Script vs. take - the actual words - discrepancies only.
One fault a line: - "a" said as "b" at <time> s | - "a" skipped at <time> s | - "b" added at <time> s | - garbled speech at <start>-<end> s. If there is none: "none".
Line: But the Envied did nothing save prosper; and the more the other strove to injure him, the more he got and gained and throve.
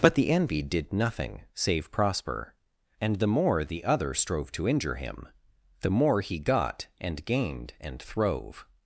none